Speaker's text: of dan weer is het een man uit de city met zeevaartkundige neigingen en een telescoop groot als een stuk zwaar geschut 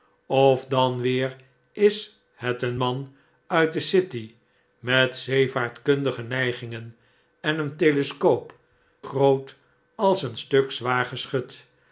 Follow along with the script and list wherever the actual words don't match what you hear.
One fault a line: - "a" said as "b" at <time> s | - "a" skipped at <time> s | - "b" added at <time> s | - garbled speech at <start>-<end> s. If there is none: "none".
none